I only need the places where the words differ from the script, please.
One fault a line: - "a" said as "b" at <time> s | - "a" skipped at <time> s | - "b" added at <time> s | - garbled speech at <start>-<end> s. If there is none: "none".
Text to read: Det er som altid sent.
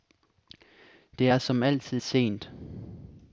none